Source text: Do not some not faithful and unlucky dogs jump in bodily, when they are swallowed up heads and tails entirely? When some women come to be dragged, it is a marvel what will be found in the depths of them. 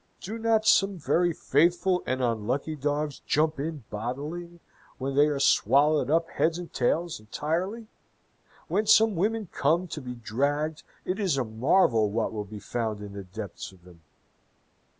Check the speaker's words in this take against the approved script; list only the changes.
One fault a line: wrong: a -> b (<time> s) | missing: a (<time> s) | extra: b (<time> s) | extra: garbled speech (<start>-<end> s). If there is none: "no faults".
wrong: not -> very (1.0 s)